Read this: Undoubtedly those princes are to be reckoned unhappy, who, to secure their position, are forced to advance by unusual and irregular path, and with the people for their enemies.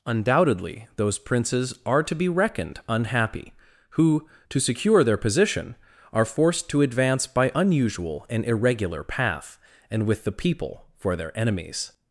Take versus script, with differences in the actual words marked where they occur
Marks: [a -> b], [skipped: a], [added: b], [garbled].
Undoubtedly those princes are to be reckoned unhappy, who, to secure their position, are forced to advance by unusual and irregular path, and with the people for their enemies.